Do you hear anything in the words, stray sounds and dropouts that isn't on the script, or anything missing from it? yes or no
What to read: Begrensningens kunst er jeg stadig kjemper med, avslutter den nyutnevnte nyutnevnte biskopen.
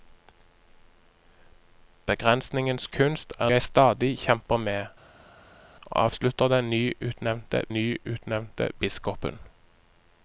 no